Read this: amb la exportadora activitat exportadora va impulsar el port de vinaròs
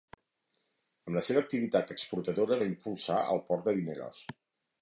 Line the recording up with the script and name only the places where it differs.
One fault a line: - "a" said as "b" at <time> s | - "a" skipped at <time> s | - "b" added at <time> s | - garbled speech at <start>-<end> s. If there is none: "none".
- "exportadora" said as "seva" at 1.3 s